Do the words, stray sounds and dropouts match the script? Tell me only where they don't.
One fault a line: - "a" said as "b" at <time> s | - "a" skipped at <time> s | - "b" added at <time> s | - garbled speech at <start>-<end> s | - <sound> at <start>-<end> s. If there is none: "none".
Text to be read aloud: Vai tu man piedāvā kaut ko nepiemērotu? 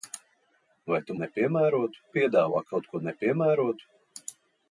- "man" said as "nepiemērotu" at 1.2 s